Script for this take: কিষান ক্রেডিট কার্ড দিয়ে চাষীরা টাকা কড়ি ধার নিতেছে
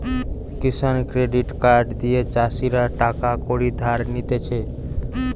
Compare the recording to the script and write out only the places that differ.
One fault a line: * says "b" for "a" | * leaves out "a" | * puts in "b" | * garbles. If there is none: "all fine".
all fine